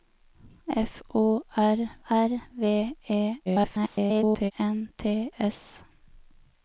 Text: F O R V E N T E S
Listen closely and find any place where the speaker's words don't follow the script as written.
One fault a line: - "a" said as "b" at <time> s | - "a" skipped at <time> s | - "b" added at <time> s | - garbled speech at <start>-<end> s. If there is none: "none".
- "R" added at 2.1 s
- garbled speech at 3.5-4.5 s
- "E" skipped at 5.3 s